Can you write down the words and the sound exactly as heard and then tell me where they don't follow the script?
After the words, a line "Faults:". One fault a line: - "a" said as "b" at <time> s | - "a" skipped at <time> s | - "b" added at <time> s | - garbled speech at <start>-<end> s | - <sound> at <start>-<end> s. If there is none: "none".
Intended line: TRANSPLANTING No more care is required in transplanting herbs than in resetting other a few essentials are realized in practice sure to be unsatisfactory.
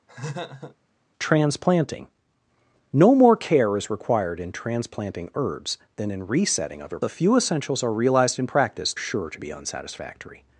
TRANSPLANTING No more care is required in transplanting herbs than in resetting other a few essentials are realized in practice sure to be unsatisfactory.
Faults:
- laugh at 0.1-0.8 s